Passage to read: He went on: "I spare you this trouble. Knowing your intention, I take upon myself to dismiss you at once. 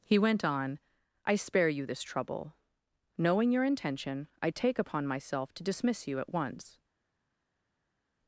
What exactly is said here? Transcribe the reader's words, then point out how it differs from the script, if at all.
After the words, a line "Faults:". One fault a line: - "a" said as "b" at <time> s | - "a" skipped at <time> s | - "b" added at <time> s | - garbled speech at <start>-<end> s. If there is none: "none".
He went on: "I spare you this trouble. Knowing your intention, I take upon myself to dismiss you at once.
Faults:
none